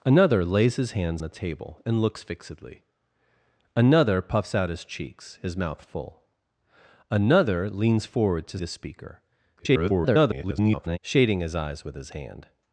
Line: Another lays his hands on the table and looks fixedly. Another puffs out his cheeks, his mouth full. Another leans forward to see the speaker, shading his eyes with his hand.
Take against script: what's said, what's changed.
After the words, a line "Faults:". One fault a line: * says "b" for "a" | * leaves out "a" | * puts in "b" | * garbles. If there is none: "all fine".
Another lays his hands the table and looks fixedly. Another puffs out his cheeks, his mouth full. Another leans forward to the speaker, [garbled] shading his eyes with his hand.
Faults:
* leaves out "on"
* leaves out "see"
* garbles